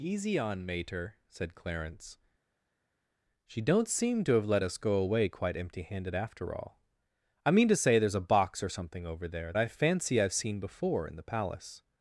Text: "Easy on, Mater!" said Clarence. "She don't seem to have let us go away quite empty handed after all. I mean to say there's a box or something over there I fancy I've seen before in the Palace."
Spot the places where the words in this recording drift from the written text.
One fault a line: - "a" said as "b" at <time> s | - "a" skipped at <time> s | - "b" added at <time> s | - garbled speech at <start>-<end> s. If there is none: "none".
none